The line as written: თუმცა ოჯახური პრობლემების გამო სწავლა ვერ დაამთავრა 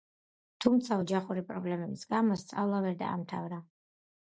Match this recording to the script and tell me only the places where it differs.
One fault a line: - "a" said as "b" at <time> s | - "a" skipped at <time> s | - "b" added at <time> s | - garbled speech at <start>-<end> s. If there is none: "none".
none